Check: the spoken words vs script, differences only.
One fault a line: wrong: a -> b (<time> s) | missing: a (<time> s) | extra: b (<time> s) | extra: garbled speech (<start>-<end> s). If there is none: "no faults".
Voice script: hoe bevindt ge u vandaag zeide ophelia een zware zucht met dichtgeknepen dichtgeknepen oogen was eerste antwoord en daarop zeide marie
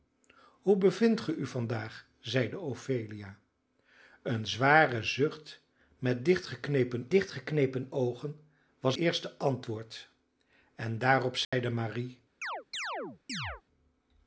no faults